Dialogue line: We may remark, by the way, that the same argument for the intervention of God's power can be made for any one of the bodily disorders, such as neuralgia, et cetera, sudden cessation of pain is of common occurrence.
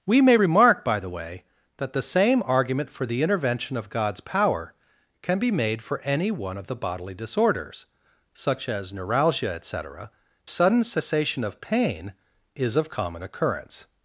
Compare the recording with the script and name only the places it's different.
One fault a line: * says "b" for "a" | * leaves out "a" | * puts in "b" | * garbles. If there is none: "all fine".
all fine